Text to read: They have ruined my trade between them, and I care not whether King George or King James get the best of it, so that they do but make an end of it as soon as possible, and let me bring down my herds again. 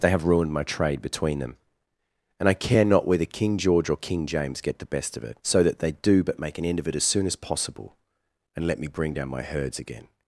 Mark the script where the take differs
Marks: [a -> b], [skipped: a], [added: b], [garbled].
They have ruined my trade between them, and I care not whether King George or King James get the best of it, so that they do but make an end of it as soon as possible, and let me bring down my herds again.